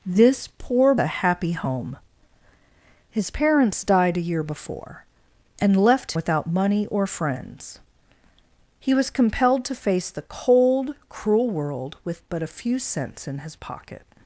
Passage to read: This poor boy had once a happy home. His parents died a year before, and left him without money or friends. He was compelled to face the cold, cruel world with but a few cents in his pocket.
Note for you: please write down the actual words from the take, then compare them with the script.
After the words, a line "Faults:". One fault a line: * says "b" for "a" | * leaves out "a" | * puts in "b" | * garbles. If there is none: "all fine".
This poor a happy home. His parents died a year before, and left without money or friends. He was compelled to face the cold, cruel world with but a few cents in his pocket.
Faults:
* leaves out "boy had once"
* leaves out "him"